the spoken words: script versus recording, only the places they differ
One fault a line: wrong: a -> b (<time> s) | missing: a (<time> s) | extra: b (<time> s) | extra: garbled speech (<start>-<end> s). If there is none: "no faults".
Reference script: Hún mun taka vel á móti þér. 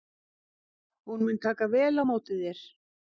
no faults